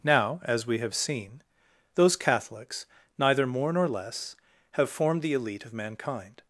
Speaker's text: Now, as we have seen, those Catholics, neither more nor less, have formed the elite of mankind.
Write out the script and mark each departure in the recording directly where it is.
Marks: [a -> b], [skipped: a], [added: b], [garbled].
Now, as we have seen, those Catholics, neither more nor less, have formed the elite of mankind.